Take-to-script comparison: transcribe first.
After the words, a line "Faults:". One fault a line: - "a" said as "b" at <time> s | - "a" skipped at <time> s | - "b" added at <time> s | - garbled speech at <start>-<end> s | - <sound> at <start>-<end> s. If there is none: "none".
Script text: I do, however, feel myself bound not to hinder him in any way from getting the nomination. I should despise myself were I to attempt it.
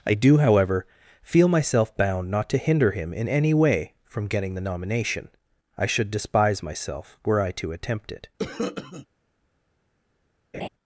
I do, however, feel myself bound not to hinder him in any way from getting the nomination. I should despise myself were I to attempt it.
Faults:
- cough at 8.4-9.1 s
- laugh at 10.5-10.7 s